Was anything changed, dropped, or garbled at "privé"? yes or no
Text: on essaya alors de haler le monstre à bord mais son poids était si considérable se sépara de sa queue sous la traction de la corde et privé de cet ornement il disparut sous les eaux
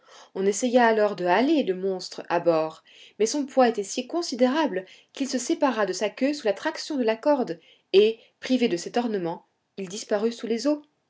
no